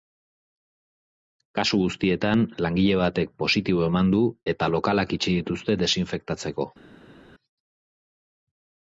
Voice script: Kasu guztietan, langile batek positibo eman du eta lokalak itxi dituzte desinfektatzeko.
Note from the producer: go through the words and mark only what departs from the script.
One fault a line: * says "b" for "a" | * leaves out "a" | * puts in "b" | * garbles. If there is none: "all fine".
all fine